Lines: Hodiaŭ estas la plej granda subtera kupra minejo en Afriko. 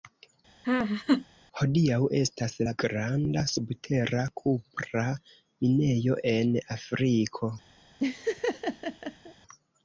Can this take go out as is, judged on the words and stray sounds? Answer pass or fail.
fail